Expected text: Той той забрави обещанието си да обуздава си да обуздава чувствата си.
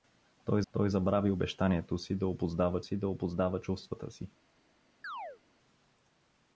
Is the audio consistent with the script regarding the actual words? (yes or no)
yes